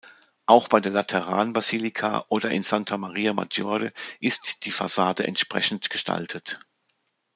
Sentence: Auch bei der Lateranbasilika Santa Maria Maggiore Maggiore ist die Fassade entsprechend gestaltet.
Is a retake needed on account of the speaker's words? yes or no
yes